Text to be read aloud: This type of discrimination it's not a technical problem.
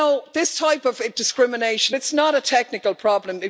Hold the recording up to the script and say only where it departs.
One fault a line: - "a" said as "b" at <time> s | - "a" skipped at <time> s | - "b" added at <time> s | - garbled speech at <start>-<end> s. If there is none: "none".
none